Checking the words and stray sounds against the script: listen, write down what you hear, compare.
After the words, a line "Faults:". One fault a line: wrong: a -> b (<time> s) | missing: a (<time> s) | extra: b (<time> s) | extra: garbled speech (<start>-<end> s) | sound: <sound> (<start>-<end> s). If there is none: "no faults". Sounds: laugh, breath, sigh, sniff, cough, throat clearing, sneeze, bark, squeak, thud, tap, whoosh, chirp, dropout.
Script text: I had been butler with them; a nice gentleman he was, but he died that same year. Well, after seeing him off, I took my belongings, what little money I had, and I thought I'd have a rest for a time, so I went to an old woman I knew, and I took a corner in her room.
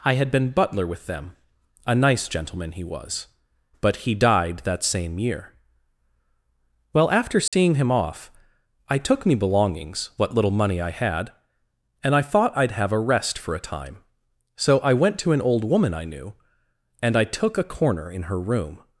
I had been butler with them; a nice gentleman he was, but he died that same year. Well, after seeing him off, I took me belongings, what little money I had, and I thought I'd have a rest for a time, so I went to an old woman I knew, and I took a corner in her room.
Faults:
sound: dropout (7.5-7.5 s)
wrong: my -> me (9.3 s)